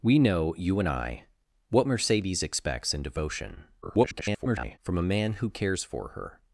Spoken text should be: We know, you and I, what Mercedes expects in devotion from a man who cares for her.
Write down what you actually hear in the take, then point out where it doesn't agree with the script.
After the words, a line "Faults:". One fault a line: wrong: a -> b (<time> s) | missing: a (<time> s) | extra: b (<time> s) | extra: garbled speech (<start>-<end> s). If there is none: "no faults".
We know, you and I, what Mercedes expects in devotion [garbled] from a man who cares for her.
Faults:
extra: garbled speech (3.8-4.8 s)